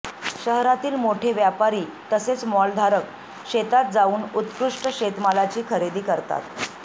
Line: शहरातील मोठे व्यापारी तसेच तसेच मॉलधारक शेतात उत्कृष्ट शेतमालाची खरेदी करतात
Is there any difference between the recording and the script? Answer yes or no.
yes